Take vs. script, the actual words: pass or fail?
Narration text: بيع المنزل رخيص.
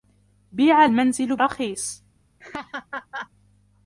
pass